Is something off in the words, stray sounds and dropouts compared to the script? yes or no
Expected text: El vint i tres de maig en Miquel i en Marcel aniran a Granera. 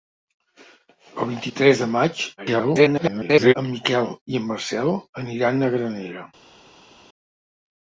yes